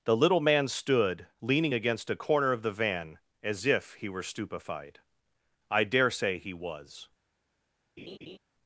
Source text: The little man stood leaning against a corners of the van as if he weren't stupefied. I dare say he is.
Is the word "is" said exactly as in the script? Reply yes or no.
no